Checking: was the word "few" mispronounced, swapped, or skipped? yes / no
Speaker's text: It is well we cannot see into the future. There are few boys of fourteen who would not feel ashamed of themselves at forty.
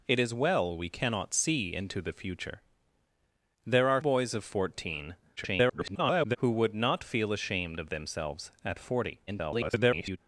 yes